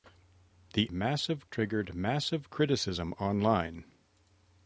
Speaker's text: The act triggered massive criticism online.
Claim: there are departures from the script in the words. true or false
true